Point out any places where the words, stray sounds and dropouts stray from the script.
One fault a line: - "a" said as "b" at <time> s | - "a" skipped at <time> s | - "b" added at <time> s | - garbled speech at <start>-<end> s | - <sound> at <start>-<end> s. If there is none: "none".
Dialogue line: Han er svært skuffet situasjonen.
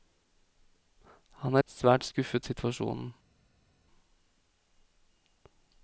none